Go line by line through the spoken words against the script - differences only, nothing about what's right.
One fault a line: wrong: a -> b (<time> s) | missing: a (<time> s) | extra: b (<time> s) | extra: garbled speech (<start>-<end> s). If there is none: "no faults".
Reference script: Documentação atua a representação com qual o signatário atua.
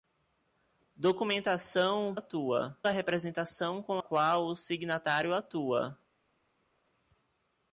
no faults